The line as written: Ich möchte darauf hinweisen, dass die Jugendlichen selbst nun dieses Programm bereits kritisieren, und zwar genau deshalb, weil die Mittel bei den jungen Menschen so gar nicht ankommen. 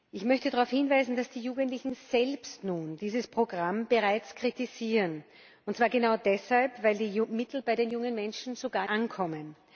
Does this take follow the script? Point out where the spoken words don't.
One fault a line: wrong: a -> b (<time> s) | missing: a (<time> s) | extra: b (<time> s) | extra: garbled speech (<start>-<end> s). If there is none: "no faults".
missing: nicht (8.9 s)